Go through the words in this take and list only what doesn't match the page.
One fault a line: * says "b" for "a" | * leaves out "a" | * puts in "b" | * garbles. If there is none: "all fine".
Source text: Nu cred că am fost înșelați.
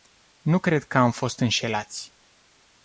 all fine